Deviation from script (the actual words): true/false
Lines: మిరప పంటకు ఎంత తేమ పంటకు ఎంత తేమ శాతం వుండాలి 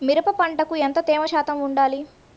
true